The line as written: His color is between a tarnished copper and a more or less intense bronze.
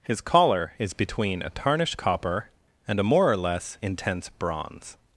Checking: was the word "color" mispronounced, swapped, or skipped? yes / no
yes